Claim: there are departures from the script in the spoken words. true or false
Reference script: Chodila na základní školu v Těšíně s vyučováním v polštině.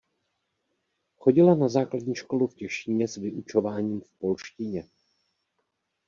false